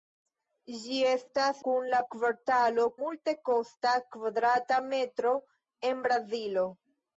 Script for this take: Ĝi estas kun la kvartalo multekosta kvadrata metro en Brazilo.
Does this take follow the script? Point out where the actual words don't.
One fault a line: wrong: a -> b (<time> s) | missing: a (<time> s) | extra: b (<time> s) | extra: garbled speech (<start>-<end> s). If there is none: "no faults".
no faults